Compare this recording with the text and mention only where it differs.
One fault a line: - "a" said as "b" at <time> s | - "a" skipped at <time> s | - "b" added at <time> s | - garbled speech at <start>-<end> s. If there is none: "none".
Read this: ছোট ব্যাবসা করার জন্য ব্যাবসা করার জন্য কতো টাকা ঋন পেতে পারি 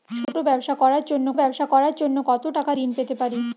none